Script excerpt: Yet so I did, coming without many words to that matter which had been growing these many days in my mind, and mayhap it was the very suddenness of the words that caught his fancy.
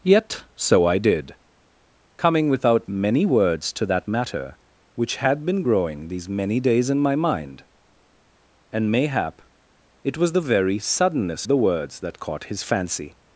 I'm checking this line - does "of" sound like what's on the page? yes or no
no